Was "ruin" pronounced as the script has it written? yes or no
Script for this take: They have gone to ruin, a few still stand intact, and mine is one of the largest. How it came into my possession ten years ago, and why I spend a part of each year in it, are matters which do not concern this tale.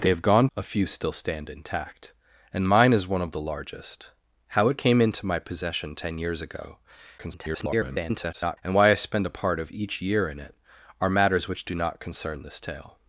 no